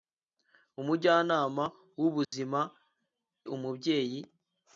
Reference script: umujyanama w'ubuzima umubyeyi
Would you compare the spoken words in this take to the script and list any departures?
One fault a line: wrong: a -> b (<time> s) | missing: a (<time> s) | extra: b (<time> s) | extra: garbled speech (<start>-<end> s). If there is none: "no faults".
no faults